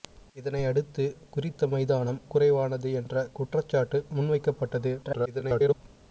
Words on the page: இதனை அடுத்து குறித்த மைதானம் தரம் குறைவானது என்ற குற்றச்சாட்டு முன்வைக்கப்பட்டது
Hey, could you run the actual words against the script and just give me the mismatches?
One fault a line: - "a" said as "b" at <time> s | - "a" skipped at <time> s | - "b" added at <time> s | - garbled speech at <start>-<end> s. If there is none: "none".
- "தரம்" skipped at 2.2 s
- garbled speech at 5.0-5.7 s